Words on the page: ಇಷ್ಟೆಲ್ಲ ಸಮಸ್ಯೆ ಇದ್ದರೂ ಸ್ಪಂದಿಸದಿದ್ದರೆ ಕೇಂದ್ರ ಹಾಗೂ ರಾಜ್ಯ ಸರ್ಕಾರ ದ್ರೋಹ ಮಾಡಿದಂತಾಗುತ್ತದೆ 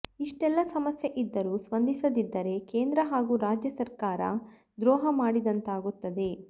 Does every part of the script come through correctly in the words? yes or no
yes